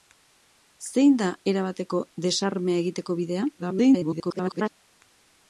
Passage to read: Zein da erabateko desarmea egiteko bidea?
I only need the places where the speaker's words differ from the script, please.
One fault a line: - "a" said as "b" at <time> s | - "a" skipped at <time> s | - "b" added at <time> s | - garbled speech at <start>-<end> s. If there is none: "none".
- garbled speech at 3.6-4.7 s